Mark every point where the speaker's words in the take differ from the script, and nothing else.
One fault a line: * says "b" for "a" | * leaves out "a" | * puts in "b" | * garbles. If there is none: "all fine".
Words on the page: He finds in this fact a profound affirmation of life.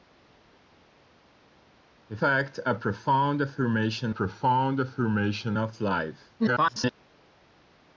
* says "fact a profound affirmation" for "finds in this fact a"
* garbles